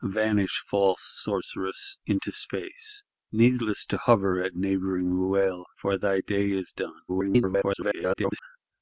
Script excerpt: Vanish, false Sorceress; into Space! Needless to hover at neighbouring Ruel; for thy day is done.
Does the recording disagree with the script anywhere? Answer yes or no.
yes